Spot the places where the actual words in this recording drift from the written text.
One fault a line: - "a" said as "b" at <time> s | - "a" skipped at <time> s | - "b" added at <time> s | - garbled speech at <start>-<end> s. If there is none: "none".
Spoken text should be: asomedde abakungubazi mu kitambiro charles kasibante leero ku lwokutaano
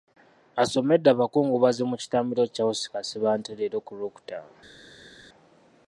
none